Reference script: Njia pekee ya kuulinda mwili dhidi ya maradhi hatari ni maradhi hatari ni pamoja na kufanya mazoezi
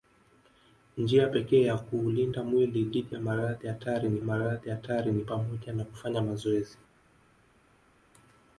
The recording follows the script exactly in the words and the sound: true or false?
true